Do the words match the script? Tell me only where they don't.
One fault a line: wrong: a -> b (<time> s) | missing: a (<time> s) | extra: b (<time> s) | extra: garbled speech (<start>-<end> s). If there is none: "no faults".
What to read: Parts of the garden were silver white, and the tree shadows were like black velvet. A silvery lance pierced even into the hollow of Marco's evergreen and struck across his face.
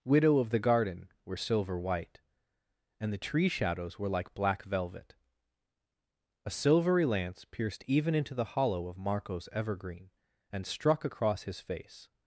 wrong: Parts -> Widow (0.0 s)